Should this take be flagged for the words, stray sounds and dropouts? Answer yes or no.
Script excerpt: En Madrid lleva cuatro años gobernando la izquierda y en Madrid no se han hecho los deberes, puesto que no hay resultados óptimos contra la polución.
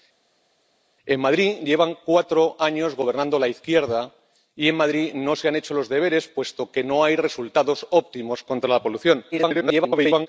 yes